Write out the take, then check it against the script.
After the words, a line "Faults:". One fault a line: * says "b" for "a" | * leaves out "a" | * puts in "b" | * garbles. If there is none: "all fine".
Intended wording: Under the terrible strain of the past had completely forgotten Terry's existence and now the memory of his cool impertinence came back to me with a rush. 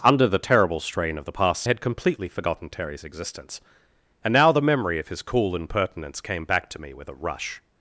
Under the terrible strain of the past had completely forgotten Terry's existence and now the memory of his cool impertinence came back to me with a rush.
Faults:
all fine